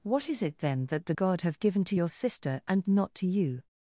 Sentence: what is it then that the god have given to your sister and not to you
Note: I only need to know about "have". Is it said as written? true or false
true